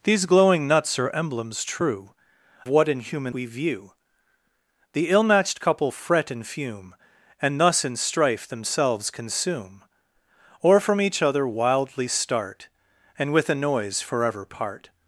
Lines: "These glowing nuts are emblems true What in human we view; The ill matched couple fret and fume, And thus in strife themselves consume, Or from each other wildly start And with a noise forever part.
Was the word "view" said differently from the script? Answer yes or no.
no